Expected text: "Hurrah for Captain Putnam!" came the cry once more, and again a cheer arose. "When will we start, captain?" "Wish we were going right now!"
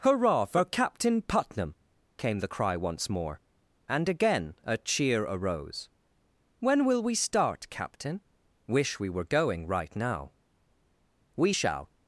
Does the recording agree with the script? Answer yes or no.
no